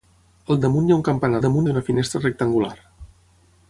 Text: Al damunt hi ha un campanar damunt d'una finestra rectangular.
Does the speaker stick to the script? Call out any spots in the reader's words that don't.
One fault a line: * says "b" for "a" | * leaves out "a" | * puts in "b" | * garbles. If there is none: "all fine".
all fine